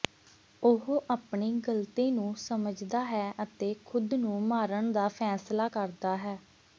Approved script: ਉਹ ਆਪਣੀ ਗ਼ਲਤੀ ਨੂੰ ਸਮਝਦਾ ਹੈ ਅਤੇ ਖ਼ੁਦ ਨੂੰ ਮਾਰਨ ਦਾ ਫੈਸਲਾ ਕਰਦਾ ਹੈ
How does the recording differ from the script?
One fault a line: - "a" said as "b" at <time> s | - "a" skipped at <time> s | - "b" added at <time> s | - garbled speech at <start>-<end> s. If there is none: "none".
none